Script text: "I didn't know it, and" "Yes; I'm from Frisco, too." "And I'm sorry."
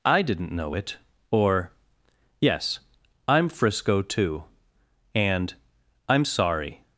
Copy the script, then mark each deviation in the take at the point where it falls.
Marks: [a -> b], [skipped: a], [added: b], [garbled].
"I didn't know it, [and" -> or] "Yes; I'm [skipped: from] Frisco, too." "And I'm sorry."